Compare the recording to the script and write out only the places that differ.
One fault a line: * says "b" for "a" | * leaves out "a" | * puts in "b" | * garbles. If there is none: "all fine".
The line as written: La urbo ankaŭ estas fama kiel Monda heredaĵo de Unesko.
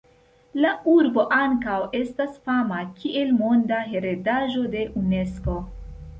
all fine